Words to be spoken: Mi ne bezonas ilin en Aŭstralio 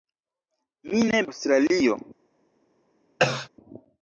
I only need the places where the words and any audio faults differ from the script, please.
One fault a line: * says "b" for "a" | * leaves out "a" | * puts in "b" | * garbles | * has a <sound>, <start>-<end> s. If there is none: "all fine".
* leaves out "bezonas ilin en"
* has a cough, 3.2-3.5 s